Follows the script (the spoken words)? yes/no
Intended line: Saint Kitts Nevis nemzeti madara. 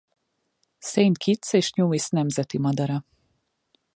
no